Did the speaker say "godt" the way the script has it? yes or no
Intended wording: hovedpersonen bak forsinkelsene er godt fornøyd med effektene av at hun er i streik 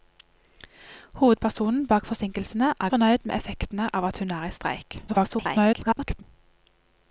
no